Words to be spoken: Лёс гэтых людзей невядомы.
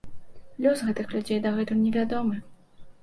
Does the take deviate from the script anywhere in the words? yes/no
yes